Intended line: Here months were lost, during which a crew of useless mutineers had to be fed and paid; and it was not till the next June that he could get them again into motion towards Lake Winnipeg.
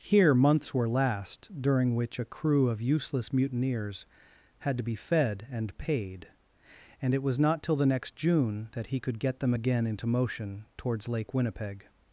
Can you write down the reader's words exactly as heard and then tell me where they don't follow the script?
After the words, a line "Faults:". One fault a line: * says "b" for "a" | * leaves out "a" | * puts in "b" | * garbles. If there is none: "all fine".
Here months were last, during which a crew of useless mutineers had to be fed and paid; and it was not till the next June that he could get them again into motion towards Lake Winnipeg.
Faults:
* says "last" for "lost"